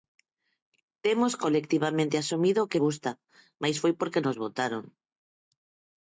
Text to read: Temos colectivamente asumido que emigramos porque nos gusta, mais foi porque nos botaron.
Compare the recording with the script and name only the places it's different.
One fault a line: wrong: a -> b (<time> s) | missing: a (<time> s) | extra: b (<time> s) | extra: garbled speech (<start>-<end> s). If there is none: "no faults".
missing: emigramos porque nos (2.8 s)